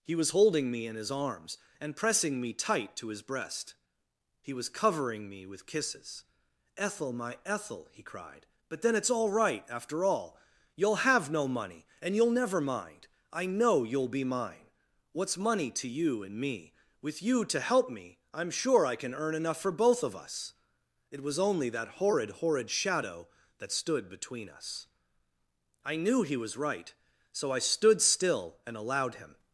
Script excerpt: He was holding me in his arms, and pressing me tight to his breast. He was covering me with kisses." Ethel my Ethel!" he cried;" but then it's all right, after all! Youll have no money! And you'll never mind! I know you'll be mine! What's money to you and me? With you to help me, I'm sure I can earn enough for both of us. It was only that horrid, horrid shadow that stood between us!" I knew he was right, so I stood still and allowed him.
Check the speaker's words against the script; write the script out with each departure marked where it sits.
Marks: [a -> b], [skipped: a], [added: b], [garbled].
He was holding me in his arms, and pressing me tight to his breast. He was covering me with kisses." Ethel my Ethel!" he cried;" but then it's all right, after all! Youll have no money! And you'll never mind! I know you'll be mine! What's money to you and me? With you to help me, I'm sure I can earn enough for both of us. It was only that horrid, horrid shadow that stood between us!" I knew he was right, so I stood still and allowed him.